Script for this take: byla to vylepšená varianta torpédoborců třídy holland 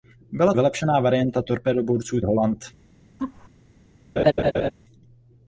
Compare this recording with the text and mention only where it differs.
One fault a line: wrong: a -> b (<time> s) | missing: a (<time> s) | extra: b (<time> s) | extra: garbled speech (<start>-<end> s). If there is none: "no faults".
missing: to (0.5 s)
missing: třídy (2.2 s)